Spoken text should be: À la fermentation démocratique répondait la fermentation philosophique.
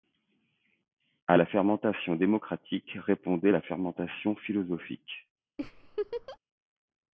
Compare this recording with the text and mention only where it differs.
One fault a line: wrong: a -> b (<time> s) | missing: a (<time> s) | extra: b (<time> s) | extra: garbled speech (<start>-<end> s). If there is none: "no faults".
no faults